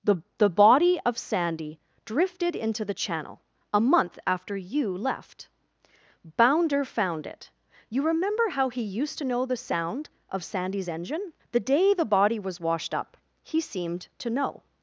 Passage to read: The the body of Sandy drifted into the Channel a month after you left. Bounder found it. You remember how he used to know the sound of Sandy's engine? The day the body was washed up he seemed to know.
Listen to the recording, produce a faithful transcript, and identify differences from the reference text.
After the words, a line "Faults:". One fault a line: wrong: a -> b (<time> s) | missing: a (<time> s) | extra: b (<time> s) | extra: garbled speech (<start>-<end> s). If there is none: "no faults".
The the body of Sandy drifted into the Channel a month after you left. Bounder found it. You remember how he used to know the sound of Sandy's engine? The day the body was washed up he seemed to know.
Faults:
no faults